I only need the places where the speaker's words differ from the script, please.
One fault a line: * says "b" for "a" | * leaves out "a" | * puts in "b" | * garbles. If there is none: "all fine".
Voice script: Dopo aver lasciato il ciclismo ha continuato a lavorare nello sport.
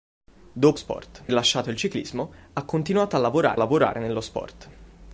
* says "sport" for "aver"
* puts in "lavorare"